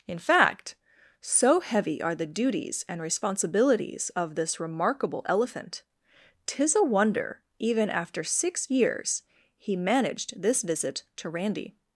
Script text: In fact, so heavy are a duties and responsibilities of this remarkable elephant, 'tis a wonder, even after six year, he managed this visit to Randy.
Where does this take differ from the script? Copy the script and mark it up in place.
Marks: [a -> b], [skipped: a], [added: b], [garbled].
In fact, so heavy are [a -> the] duties and responsibilities of this remarkable elephant, 'tis a wonder, even after six [year, -> years] he managed this visit to Randy.